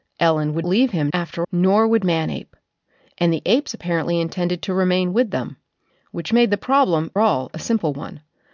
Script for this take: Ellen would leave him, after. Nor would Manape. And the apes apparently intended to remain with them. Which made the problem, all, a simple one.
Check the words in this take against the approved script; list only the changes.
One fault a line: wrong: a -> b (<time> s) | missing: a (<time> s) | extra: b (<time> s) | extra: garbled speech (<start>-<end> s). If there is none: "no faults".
no faults